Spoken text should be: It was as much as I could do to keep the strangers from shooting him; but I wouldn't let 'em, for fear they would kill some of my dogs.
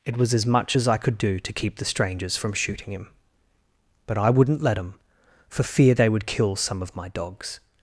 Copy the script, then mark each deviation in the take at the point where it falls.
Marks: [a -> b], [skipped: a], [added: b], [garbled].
It was as much as I could do to keep the strangers from shooting him; but I wouldn't let 'em, for fear they would kill some of my dogs.